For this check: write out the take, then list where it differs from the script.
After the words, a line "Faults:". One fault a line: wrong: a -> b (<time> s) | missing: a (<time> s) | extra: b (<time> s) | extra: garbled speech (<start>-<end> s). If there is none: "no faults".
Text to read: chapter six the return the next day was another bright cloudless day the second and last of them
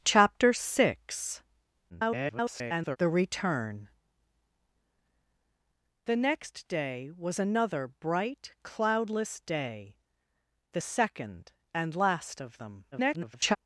chapter six [garbled] the return the next day was another bright cloudless day the second and last of them [garbled]
Faults:
extra: garbled speech (1.9-3.0 s)
extra: garbled speech (12.9-13.6 s)